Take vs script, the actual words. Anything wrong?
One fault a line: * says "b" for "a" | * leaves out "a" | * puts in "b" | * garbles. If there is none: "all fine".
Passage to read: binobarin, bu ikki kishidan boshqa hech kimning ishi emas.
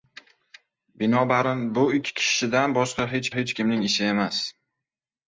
* puts in "hech"